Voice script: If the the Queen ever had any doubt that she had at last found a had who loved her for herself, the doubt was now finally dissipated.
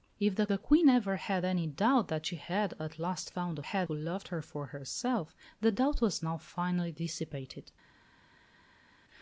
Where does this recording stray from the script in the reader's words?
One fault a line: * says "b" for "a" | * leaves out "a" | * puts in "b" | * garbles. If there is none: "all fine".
all fine